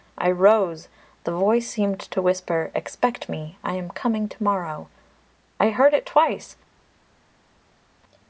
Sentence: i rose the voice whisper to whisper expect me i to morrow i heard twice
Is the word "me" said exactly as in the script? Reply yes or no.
yes